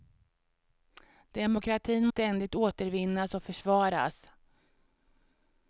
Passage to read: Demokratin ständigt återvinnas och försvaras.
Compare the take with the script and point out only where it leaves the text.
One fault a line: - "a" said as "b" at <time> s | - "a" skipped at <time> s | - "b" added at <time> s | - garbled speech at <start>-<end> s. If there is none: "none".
none